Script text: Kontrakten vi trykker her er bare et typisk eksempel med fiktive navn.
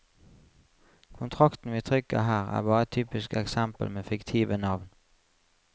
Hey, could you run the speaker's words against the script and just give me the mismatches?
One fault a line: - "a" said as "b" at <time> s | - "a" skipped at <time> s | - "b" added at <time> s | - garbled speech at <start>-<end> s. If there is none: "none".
none